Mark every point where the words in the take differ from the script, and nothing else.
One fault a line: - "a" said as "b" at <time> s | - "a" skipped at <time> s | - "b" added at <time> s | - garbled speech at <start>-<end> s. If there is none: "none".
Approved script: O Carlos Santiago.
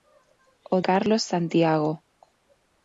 none